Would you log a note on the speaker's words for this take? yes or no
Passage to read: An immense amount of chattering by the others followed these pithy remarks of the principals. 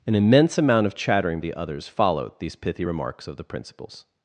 yes